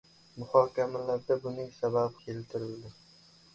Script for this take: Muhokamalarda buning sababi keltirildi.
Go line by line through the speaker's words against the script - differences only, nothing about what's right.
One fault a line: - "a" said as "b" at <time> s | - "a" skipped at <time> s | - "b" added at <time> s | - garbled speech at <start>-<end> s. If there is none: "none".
none